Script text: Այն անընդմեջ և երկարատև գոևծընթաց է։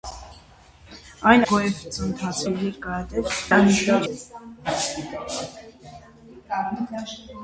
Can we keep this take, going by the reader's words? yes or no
no